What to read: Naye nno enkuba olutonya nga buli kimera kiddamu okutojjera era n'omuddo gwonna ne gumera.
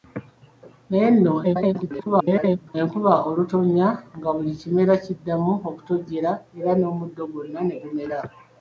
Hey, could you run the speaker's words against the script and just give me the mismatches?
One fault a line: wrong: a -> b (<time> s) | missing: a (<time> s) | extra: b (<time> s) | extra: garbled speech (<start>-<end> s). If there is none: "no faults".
extra: garbled speech (1.4-2.8 s)